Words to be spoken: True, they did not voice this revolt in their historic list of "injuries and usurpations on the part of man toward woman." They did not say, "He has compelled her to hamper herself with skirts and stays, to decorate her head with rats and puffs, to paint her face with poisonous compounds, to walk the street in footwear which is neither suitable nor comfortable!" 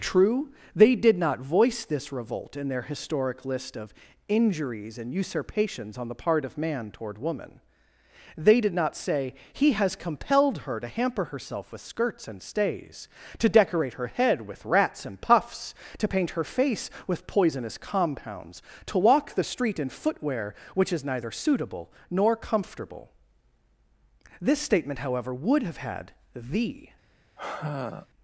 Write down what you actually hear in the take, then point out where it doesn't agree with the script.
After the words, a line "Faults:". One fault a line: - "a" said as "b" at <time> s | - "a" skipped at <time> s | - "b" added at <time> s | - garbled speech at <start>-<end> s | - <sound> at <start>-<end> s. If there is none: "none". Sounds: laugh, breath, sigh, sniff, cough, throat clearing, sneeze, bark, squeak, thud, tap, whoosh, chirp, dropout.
True, they did not voice this revolt in their historic list of "injuries and usurpations on the part of man toward woman." They did not say, "He has compelled her to hamper herself with skirts and stays, to decorate her head with rats and puffs, to paint her face with poisonous compounds, to walk the street in footwear which is neither suitable nor comfortable!" This statement, however, would have had the
Faults:
- "This statement however would have had the" added at 24.4 s
- sigh at 27.4-28.1 s